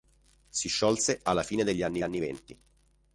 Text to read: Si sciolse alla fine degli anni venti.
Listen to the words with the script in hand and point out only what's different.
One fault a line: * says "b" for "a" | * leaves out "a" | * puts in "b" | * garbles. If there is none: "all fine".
* puts in "anni"